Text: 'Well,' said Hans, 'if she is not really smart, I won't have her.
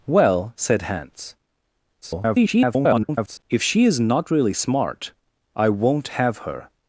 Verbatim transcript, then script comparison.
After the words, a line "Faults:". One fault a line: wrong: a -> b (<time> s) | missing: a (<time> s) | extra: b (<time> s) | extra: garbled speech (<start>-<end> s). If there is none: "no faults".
'Well,' said Hans, [garbled] 'if she is not really smart, I won't have her.
Faults:
extra: garbled speech (2.0-3.4 s)